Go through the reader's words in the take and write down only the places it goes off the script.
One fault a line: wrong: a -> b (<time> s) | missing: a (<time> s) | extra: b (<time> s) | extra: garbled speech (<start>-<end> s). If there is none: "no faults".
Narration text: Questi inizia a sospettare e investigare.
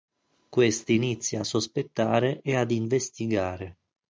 extra: ad (2.6 s)